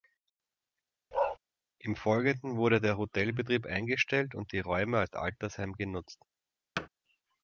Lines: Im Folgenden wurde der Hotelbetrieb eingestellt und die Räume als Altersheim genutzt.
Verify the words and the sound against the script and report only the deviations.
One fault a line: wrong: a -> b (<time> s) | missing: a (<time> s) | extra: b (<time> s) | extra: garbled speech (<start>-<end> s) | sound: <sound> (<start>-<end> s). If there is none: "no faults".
sound: bark (1.1-1.4 s)
sound: thud (6.8-6.9 s)